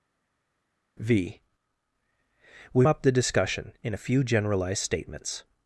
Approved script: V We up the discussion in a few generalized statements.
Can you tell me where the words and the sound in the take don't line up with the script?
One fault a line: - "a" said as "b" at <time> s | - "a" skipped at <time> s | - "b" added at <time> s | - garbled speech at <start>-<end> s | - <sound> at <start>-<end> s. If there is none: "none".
none